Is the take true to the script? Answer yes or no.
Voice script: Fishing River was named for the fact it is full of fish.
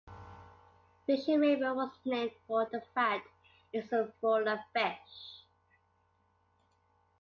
yes